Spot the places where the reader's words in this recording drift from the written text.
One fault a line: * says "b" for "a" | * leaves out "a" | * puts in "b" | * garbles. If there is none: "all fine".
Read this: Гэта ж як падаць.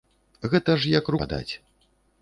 all fine